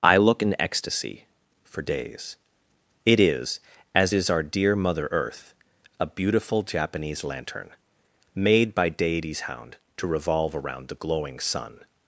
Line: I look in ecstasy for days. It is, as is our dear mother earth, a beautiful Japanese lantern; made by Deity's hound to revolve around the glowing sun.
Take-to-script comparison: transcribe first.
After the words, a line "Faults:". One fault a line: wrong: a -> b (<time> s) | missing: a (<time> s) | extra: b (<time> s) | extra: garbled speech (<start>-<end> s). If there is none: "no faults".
I look in ecstasy for days. It is, as is our dear mother earth, a beautiful Japanese lantern; made by Deity's hound to revolve around the glowing sun.
Faults:
no faults